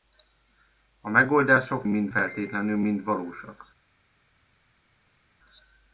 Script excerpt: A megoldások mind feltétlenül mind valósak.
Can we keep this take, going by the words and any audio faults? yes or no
yes